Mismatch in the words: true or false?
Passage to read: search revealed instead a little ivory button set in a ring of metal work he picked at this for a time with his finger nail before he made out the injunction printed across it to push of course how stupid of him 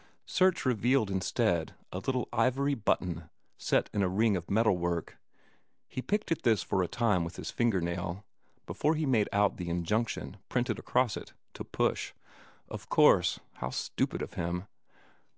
false